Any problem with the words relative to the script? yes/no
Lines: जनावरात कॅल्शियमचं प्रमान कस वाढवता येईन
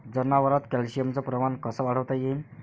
no